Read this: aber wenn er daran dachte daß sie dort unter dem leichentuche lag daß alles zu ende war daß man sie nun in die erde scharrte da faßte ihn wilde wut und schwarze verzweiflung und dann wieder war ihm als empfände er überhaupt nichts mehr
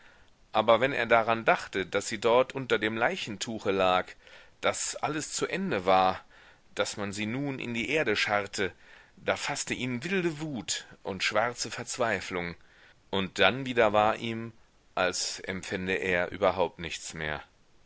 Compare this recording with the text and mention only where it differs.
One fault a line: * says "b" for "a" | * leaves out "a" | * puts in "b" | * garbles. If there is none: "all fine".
all fine